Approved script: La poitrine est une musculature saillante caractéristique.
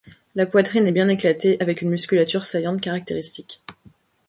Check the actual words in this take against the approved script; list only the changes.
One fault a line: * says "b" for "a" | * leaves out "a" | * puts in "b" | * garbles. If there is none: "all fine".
* puts in "bien éclatée avec"